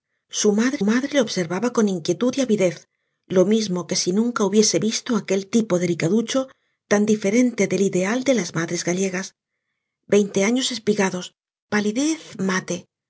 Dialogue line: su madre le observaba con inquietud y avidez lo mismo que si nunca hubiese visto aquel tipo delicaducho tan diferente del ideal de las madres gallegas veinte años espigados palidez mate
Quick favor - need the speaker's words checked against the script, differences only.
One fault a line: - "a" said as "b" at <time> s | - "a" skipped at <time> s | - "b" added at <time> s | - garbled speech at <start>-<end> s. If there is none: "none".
- "madre" added at 0.8 s